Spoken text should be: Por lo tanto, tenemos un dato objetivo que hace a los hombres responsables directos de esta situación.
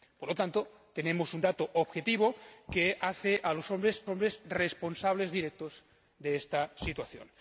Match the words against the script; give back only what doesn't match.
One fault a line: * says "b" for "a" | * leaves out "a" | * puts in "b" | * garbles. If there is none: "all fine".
* puts in "hombres"